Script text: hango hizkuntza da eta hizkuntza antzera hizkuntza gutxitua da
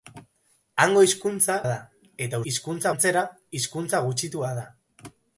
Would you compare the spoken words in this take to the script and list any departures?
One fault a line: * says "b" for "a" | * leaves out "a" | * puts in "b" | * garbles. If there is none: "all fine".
all fine